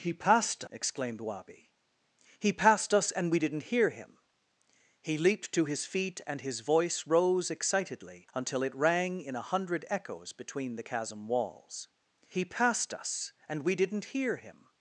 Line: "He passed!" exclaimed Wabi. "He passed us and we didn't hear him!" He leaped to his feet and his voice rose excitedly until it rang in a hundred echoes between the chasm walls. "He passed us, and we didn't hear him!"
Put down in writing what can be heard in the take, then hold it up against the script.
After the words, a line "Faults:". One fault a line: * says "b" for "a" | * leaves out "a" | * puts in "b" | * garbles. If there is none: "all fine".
"He passed!" exclaimed Wabi. "He passed us and we didn't hear him!" He leaped to his feet and his voice rose excitedly until it rang in a hundred echoes between the chasm walls. "He passed us, and we didn't hear him!"
Faults:
all fine